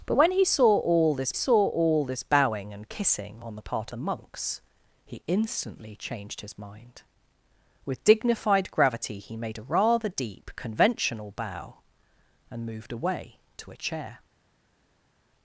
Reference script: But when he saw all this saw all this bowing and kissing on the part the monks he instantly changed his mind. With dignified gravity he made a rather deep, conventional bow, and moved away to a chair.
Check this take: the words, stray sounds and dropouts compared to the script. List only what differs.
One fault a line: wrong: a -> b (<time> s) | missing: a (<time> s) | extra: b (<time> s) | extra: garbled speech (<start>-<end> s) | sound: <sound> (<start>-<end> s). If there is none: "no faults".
no faults